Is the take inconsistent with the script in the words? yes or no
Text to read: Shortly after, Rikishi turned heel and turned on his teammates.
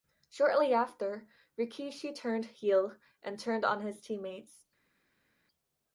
no